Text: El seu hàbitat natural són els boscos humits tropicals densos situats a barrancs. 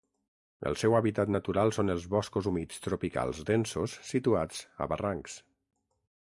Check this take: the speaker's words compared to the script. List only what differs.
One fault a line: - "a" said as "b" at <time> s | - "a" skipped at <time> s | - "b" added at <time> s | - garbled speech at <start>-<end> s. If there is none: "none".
none